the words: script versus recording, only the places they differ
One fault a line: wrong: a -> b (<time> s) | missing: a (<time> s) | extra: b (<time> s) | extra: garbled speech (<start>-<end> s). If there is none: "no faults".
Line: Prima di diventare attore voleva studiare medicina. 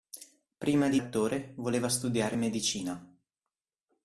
missing: diventare (1.0 s)